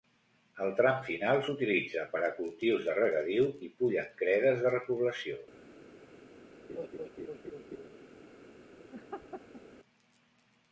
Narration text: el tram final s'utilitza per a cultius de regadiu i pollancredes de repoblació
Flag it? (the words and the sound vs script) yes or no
yes